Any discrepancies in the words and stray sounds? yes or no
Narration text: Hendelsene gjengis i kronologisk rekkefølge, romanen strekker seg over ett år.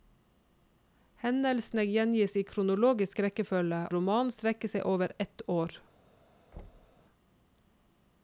yes